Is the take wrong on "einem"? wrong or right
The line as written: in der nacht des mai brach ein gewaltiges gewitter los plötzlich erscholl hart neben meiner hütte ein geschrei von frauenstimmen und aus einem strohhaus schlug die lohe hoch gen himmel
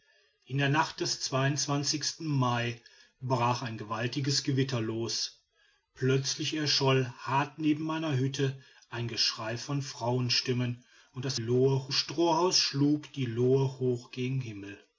wrong